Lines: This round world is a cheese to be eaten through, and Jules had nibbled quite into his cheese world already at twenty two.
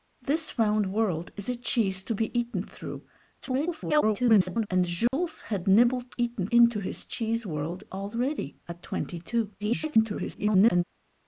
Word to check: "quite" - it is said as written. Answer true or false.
false